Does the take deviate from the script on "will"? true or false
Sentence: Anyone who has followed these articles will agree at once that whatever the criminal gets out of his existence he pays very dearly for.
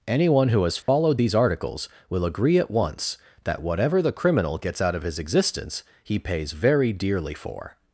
false